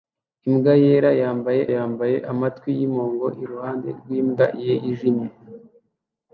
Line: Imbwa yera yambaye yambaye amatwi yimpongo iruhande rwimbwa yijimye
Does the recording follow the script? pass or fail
pass